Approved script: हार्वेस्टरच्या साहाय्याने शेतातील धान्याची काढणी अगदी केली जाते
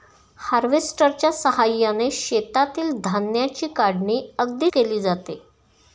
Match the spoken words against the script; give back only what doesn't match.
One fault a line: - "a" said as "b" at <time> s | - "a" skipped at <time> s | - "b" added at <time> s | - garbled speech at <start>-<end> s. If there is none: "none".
none